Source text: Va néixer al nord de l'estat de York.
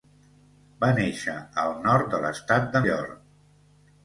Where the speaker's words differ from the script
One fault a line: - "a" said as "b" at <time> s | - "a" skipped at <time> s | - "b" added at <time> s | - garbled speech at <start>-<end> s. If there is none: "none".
none